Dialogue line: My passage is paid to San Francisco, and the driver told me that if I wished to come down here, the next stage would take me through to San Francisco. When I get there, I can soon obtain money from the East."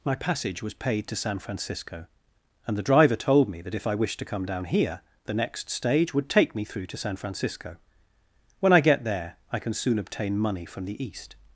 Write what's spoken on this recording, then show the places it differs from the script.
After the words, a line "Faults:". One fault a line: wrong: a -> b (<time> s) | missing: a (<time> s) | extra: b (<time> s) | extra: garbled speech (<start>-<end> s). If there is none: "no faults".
My passage was paid to San Francisco, and the driver told me that if I wished to come down here, the next stage would take me through to San Francisco. When I get there, I can soon obtain money from the East."
Faults:
wrong: is -> was (0.6 s)